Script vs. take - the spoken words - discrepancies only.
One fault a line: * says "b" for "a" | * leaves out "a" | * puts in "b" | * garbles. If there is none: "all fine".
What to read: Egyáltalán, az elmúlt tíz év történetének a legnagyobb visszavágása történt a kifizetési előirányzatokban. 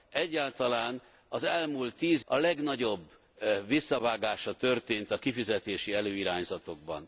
* leaves out "év történetének"